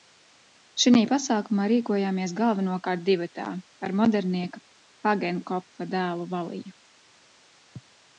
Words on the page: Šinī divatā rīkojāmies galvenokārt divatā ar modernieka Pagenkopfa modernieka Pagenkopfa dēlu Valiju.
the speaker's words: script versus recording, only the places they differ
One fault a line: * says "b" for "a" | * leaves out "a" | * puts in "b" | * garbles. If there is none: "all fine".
* says "pasākumā" for "divatā"
* leaves out "modernieka Pagenkopfa"